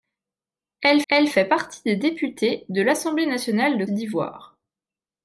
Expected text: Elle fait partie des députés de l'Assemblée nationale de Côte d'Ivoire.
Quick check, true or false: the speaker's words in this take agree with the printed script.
false